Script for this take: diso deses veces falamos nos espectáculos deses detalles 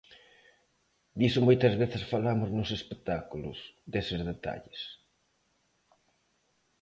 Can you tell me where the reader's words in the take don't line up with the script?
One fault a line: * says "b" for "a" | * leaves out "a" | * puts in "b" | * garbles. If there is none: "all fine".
* says "moitas" for "deses"